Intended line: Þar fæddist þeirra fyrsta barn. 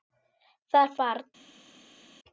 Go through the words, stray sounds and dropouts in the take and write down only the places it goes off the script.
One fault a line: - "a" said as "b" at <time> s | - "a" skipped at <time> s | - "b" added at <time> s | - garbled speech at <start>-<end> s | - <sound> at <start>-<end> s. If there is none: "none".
- "fæddist þeirra fyrsta" skipped at 0.9 s